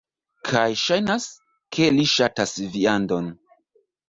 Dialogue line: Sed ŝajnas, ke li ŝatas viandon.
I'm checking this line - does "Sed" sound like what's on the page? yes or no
no